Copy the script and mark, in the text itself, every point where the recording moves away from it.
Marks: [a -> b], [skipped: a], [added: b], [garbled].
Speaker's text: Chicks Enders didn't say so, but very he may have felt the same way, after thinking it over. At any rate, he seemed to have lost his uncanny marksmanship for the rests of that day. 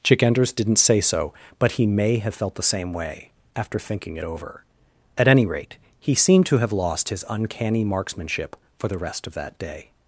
[Chicks -> Chick] Enders didn't say so, but [skipped: very] he may have felt the same way, after thinking it over. At any rate, he seemed to have lost his uncanny marksmanship for the [rests -> rest] of that day.